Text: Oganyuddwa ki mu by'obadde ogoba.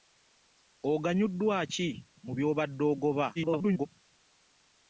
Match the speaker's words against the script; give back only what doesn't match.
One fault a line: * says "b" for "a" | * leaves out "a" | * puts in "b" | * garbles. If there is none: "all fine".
* garbles